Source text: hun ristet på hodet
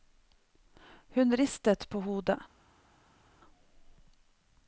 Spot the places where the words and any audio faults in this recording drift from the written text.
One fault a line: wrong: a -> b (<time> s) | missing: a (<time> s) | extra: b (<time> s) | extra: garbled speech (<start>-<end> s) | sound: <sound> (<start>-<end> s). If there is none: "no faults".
no faults